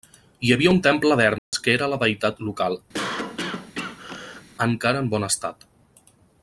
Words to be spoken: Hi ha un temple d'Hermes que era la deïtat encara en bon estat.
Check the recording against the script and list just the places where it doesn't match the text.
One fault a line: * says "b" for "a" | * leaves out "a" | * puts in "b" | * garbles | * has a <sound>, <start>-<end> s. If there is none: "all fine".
* says "havia" for "ha"
* has a dropout, 1.4-1.5 s
* puts in "local"
* has a cough, 2.9-4.4 s